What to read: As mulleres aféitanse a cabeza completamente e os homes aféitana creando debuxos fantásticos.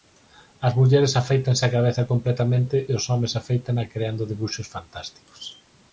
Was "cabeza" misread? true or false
false